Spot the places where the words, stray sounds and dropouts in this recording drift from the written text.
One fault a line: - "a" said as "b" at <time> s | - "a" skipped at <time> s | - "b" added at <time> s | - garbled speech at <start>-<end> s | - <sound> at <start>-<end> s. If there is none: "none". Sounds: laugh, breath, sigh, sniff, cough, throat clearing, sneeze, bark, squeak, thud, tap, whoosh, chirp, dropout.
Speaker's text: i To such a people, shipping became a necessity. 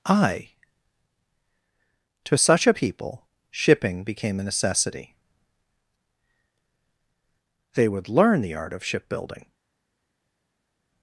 - "They would learn the art of shipbuilding" added at 7.7 s